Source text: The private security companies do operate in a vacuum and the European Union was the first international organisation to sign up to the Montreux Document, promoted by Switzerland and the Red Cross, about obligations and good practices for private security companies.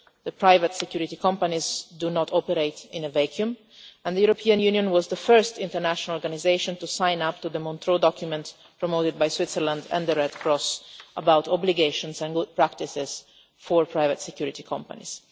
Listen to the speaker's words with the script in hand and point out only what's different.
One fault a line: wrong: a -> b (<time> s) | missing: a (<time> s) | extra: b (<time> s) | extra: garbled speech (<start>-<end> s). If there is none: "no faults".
extra: not (2.1 s)